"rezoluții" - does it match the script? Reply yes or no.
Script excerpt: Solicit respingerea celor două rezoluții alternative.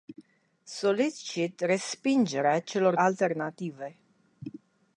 no